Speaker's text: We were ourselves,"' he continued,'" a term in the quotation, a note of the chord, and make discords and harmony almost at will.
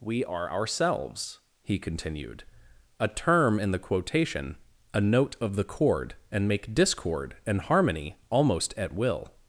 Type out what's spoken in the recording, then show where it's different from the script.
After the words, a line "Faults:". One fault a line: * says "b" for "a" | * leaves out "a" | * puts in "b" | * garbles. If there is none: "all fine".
We are ourselves,"' he continued,'" a term in the quotation, a note of the chord, and make discord and harmony almost at will.
Faults:
* says "are" for "were"
* says "discord" for "discords"